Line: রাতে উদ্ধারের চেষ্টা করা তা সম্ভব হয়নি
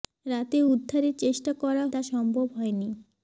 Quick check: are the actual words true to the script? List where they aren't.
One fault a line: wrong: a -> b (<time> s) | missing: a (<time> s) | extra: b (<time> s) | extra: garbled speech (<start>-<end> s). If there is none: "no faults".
no faults